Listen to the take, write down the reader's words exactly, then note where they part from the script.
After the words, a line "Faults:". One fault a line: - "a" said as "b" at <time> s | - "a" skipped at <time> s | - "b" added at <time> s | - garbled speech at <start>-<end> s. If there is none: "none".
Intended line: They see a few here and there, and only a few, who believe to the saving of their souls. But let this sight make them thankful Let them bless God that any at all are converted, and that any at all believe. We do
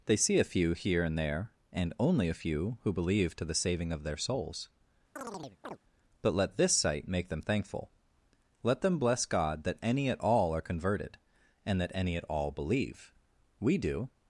They see a few here and there, and only a few, who believe to the saving of their souls. But let this sight make them thankful Let them bless God that any at all are converted, and that any at all believe. We do
Faults:
none